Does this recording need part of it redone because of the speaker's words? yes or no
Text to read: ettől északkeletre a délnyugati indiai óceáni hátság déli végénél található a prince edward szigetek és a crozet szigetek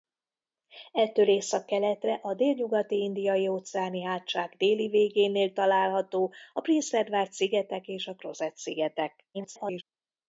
yes